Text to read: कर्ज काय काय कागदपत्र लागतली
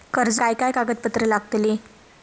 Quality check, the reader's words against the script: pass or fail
pass